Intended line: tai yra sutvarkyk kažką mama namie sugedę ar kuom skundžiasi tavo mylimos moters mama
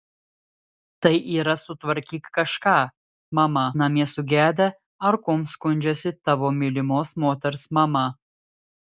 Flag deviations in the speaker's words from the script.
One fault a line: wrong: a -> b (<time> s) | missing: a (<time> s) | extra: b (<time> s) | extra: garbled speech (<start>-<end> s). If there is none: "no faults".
no faults